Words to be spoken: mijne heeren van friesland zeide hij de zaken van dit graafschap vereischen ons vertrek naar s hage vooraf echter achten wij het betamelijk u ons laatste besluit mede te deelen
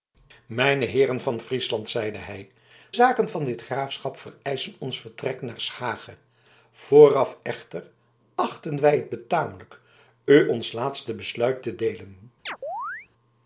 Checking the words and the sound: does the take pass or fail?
fail